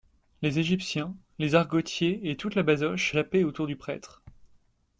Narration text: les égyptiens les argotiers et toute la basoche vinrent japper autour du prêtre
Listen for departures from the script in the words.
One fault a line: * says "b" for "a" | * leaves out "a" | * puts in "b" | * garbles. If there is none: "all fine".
* leaves out "vinrent"